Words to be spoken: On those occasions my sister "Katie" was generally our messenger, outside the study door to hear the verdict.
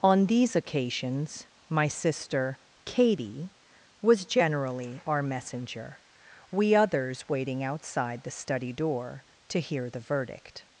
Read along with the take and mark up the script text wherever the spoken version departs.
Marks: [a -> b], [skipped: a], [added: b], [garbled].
On [those -> these] occasions my sister "Katie" was generally our messenger, [added: we others waiting] outside the study door to hear the verdict.